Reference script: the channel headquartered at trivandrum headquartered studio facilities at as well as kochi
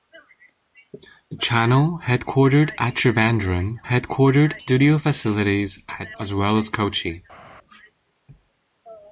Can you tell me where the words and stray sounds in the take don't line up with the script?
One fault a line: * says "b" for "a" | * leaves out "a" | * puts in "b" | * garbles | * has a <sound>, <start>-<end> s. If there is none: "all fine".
all fine